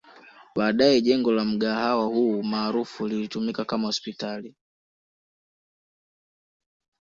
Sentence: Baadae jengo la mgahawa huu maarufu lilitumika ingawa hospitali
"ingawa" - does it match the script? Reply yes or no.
no